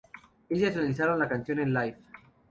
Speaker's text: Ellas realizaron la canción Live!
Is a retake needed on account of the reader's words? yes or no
yes